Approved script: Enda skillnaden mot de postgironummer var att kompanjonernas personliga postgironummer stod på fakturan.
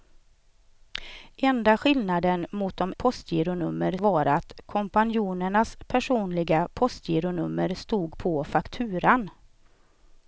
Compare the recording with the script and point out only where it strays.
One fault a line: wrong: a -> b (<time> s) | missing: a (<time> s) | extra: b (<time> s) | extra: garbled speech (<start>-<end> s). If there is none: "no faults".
no faults